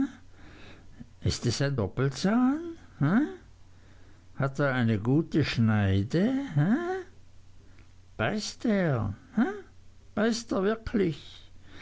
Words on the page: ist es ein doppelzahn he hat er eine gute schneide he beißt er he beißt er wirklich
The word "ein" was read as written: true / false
true